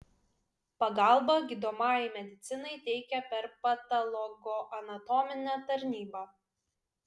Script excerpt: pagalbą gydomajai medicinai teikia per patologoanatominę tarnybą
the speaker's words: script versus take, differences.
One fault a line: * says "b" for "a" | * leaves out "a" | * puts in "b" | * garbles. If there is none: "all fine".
all fine